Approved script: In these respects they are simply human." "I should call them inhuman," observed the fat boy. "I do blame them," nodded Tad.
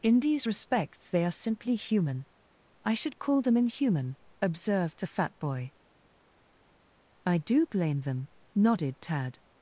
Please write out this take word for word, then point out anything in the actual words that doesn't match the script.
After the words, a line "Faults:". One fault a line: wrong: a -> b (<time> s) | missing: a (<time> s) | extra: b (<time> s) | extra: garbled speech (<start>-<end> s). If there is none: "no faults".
In these respects they are simply human." "I should call them inhuman," observed the fat boy. "I do blame them," nodded Tad.
Faults:
no faults